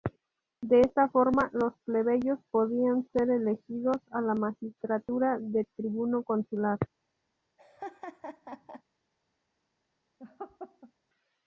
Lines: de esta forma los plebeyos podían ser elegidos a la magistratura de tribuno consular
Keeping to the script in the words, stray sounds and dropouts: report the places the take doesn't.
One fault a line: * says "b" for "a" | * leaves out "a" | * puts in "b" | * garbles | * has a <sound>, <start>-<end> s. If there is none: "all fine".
* has a laugh, 7.6-8.8 s
* has a laugh, 10.2-10.9 s